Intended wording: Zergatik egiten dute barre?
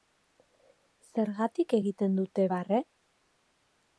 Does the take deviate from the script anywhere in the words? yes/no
no